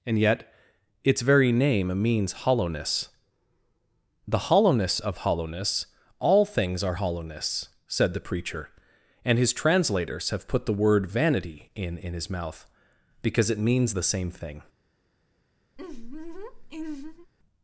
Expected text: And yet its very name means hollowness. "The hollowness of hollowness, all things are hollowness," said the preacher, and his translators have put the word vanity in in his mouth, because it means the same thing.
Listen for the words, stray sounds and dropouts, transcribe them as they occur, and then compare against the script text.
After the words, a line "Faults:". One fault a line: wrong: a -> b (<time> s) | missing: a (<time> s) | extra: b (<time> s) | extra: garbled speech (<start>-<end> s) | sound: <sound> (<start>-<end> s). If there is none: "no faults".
And yet its very name means hollowness. "The hollowness of hollowness, all things are hollowness," said the preacher, and his translators have put the word vanity in in his mouth, because it means the same thing.
Faults:
sound: laugh (15.8-17.3 s)